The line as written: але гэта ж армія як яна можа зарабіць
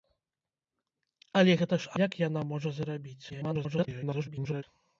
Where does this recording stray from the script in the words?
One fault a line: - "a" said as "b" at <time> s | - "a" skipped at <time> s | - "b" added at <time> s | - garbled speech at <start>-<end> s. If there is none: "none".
- "армія" skipped at 1.9 s
- garbled speech at 3.3-4.6 s